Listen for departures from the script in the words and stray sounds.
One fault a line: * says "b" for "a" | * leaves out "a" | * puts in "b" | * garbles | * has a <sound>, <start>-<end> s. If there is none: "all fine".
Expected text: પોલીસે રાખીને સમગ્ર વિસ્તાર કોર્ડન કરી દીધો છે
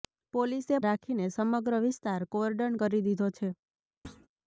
* has a thud, 4.0-4.3 s